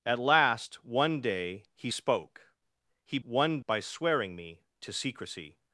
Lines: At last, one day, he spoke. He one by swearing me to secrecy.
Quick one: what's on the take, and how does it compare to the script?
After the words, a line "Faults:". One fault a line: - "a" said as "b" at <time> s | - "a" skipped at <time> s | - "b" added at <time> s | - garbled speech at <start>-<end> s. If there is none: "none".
At last, one day, he spoke. He one by swearing me to secrecy.
Faults:
none